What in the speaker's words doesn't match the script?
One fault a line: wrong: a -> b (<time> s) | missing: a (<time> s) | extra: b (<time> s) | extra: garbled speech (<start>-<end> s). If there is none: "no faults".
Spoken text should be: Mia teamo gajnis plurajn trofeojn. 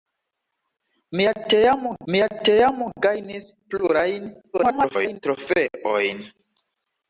extra: mia teamo (2.1 s)
extra: garbled speech (4.5-5.2 s)